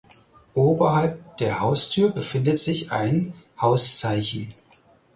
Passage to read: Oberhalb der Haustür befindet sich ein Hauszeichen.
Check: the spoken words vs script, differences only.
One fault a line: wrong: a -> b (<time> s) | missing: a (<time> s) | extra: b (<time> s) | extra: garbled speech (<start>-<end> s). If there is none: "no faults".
no faults